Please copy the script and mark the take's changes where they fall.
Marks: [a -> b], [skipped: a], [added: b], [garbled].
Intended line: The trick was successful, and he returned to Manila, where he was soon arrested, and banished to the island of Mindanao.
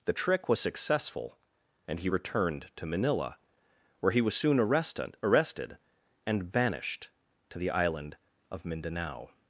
The trick was successful, and he returned to Manila, where he was soon arrested, [added: arrested] and banished to the island of Mindanao.